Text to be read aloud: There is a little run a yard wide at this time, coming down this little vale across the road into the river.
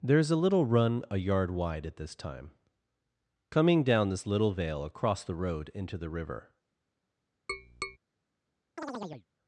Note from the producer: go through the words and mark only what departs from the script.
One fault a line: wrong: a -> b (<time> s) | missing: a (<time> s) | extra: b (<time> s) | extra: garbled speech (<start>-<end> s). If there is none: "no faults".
no faults